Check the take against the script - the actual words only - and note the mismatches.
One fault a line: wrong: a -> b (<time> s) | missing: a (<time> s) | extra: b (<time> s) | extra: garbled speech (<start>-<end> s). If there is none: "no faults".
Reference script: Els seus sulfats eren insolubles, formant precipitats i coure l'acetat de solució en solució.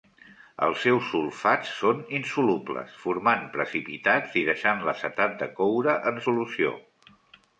wrong: eren -> són (1.8 s)
wrong: coure -> deixant (4.5 s)
wrong: solució -> coure (5.6 s)